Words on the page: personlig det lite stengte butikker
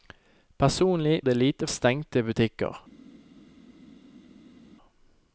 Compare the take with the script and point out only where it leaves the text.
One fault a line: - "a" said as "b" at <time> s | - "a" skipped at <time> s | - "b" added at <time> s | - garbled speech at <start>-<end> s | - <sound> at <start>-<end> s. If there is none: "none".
none